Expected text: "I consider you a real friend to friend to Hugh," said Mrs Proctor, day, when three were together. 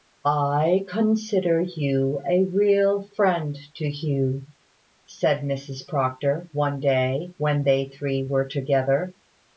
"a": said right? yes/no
yes